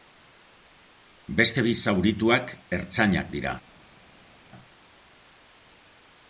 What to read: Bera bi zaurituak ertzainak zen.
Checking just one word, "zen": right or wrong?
wrong